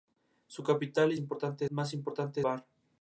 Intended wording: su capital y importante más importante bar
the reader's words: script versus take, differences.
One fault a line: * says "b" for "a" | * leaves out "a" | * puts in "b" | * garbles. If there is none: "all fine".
all fine